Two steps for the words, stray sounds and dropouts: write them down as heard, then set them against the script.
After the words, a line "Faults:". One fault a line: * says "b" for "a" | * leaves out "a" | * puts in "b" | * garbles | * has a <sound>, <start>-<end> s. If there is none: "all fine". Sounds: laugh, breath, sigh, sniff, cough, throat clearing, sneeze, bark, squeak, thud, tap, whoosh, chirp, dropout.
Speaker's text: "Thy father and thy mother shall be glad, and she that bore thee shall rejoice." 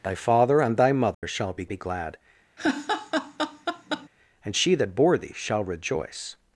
"Thy father and thy mother shall be be glad, and she that bore thee shall rejoice."
Faults:
* has a dropout, 1.1-1.2 s
* puts in "be"
* has a laugh, 2.6-4.1 s